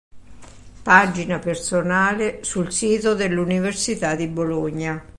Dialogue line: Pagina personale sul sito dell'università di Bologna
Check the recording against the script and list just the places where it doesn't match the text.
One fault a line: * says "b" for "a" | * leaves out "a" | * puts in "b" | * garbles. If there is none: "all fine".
all fine